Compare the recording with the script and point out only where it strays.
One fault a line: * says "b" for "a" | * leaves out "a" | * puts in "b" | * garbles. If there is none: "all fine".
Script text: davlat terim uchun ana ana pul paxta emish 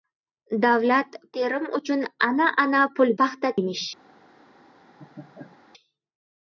all fine